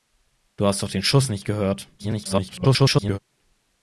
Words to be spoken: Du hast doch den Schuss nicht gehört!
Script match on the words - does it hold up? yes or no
no